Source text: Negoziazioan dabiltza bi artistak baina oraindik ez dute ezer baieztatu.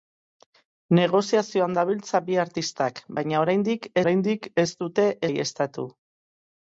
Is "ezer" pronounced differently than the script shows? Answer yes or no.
yes